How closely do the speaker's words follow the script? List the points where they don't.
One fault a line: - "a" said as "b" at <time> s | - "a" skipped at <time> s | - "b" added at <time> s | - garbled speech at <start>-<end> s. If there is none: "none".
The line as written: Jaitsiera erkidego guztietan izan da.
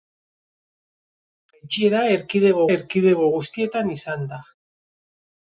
- "erkidego" added at 2.7 s